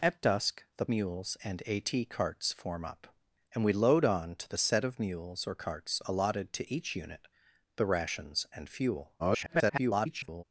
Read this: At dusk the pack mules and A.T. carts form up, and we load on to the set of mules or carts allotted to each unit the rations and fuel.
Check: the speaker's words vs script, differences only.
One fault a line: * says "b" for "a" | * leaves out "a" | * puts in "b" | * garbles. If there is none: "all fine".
* leaves out "pack"
* garbles